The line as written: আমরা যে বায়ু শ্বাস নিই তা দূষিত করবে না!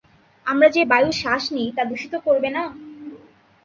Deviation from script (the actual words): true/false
false